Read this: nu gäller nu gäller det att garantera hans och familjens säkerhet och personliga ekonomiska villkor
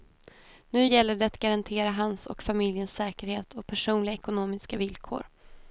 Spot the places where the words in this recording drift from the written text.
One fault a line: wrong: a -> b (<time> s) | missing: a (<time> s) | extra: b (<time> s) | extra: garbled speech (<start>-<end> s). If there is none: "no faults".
missing: nu gäller (1.1 s)